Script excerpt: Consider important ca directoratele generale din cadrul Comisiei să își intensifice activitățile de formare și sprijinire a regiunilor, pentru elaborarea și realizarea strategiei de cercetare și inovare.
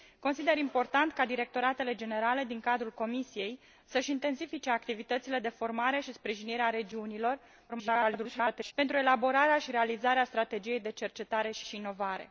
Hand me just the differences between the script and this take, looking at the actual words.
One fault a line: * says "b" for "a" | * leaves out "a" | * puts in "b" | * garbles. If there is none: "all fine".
* garbles
* puts in "și"